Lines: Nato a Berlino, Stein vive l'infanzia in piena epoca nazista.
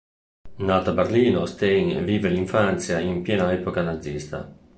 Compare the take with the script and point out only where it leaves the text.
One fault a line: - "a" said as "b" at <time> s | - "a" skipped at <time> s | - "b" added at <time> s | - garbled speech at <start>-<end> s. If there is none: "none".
none